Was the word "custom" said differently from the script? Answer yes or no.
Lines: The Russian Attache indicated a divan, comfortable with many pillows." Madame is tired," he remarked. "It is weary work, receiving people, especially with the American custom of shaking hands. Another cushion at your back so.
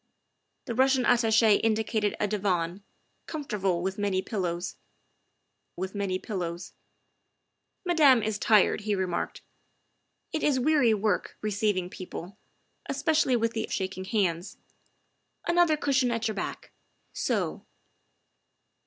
yes